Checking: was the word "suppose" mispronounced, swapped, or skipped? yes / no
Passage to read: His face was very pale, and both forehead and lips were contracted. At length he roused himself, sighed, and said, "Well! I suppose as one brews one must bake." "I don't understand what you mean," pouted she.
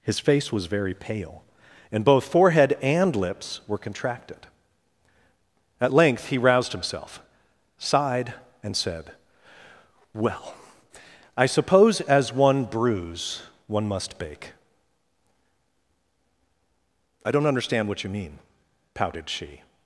no